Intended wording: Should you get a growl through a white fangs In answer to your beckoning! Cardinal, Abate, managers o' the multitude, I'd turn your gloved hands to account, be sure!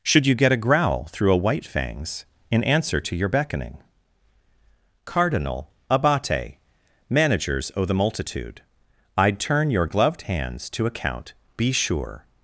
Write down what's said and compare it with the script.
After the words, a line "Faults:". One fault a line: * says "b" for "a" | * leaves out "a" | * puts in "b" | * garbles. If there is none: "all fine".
Should you get a growl through a white fangs In answer to your beckoning! Cardinal, Abate, managers o' the multitude, I'd turn your gloved hands to account, be sure!
Faults:
all fine